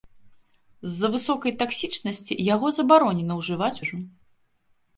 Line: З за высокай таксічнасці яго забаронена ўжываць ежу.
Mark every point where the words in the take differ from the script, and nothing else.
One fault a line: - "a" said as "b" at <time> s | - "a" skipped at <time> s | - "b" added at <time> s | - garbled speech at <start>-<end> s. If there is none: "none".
none